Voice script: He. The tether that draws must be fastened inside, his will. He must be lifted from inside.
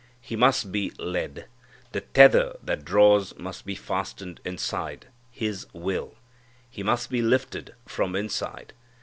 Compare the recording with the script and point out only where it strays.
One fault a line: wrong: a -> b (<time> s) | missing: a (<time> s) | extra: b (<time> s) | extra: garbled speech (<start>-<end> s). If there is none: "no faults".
extra: must be led (0.3 s)